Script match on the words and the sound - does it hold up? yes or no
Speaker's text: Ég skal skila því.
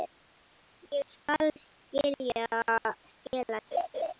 no